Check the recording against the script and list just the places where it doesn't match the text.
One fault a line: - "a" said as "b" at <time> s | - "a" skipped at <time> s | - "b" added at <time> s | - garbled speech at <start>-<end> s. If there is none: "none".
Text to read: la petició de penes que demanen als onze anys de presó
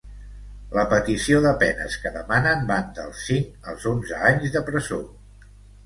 - "van dels cinc" added at 2.7 s